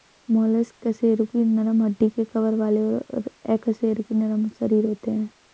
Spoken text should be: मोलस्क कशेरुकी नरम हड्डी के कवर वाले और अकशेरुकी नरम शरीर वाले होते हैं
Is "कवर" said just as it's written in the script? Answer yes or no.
yes